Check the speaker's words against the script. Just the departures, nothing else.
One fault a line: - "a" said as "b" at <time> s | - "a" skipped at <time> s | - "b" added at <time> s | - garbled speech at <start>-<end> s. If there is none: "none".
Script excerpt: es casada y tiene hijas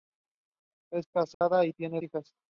none